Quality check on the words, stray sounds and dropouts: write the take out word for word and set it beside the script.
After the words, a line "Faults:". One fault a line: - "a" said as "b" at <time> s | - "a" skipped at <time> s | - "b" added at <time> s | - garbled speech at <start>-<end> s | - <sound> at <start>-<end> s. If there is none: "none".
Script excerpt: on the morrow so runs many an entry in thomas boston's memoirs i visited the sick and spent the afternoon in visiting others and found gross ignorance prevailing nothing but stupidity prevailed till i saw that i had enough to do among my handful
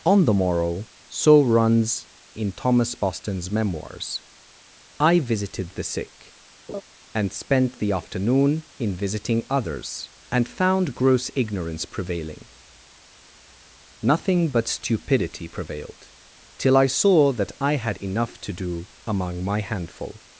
on the morrow so runs in thomas boston's memoirs i visited the sick and spent the afternoon in visiting others and found gross ignorance prevailing nothing but stupidity prevailed till i saw that i had enough to do among my handful
Faults:
- "many an entry" skipped at 2.1 s
- laugh at 6.7-6.8 s